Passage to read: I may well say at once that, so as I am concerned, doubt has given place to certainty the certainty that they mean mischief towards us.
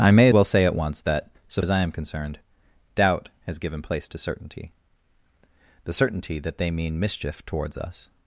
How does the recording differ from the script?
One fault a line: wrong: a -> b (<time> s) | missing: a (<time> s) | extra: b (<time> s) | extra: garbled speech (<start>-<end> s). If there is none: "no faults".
no faults